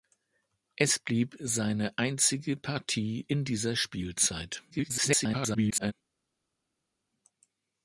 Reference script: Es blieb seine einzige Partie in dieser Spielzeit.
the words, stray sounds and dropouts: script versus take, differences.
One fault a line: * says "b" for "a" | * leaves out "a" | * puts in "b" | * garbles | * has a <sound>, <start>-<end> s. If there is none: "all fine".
* garbles